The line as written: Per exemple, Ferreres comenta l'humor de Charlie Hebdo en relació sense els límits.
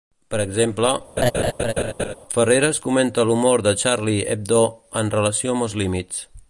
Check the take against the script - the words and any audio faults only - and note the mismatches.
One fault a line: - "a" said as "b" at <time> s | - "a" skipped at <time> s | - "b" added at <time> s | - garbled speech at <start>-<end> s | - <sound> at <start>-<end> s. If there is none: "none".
- laugh at 1.2-2.2 s
- "sense" said as "amb" at 5.6 s